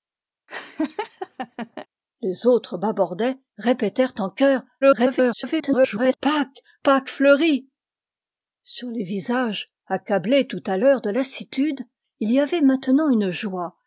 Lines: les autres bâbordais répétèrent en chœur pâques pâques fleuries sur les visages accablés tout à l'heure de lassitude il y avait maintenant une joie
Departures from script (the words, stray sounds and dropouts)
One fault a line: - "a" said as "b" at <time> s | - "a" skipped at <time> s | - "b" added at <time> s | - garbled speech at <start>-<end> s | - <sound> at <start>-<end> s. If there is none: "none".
- laugh at 0.5-1.9 s
- garbled speech at 4.8-6.2 s